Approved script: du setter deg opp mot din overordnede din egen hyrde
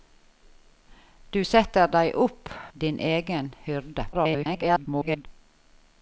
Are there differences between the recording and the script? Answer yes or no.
yes